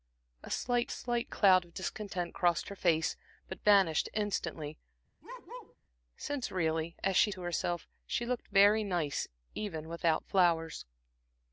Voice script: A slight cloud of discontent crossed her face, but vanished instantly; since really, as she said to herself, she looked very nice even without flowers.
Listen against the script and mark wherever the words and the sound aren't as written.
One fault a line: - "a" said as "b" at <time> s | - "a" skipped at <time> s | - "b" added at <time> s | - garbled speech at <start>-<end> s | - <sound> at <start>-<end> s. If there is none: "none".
- "slight" added at 0.9 s
- bark at 5.2-5.8 s
- "said" skipped at 7.3 s